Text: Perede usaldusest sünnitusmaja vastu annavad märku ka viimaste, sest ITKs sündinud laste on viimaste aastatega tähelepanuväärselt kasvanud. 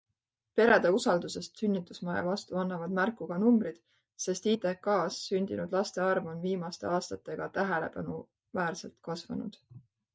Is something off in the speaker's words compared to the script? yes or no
yes